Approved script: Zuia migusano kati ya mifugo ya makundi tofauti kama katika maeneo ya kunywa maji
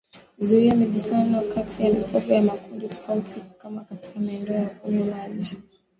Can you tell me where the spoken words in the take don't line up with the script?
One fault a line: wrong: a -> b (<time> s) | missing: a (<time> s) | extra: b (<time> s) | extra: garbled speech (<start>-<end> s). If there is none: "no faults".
no faults